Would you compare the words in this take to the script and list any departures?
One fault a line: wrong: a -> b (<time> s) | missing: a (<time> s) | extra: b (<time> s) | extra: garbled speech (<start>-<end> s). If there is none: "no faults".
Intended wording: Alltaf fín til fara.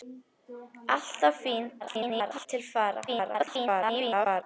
extra: garbled speech (1.8-2.5 s)
extra: garbled speech (3.1-4.4 s)